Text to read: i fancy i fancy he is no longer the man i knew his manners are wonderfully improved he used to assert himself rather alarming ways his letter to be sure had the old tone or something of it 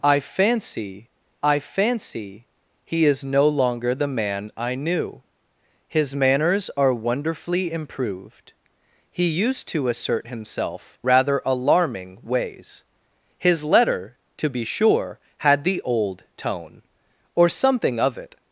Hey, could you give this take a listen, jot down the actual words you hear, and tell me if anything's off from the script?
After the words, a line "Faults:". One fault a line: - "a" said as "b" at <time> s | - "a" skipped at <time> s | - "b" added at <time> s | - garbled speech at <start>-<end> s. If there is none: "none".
i fancy i fancy he is no longer the man i knew his manners are wonderfully improved he used to assert himself rather alarming ways his letter to be sure had the old tone or something of it
Faults:
none